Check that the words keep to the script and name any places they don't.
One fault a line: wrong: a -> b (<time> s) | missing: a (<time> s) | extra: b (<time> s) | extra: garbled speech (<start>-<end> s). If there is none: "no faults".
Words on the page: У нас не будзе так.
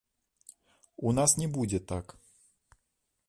no faults